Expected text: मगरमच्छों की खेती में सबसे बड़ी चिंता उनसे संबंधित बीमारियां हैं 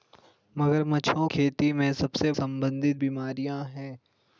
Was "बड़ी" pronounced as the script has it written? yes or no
no